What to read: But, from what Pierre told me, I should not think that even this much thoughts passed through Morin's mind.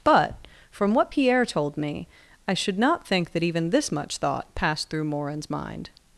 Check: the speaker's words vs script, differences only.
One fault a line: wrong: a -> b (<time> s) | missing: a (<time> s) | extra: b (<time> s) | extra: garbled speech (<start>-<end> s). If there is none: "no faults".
wrong: thoughts -> thought (4.2 s)